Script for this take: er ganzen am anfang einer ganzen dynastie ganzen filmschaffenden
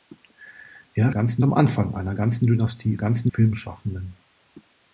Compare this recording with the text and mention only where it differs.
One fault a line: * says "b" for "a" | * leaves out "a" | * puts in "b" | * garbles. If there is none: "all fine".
all fine